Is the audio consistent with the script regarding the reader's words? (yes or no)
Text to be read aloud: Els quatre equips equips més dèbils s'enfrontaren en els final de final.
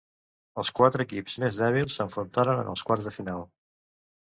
no